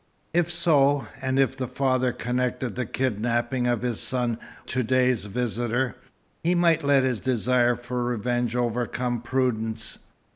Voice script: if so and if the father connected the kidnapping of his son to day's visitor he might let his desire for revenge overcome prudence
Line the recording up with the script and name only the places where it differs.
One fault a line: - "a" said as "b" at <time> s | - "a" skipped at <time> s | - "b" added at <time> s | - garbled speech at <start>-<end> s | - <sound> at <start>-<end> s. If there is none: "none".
none